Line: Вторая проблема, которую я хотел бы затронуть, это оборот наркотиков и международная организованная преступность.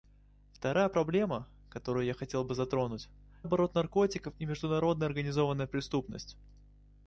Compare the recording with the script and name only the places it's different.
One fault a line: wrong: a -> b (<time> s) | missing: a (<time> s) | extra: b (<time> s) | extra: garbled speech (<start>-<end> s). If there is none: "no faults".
missing: это (3.1 s)